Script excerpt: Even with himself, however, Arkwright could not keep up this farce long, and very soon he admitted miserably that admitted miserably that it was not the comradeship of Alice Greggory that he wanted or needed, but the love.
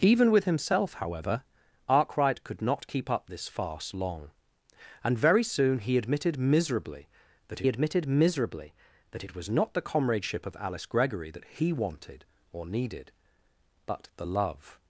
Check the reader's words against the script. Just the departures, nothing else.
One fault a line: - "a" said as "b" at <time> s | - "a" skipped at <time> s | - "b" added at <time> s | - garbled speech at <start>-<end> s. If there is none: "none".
none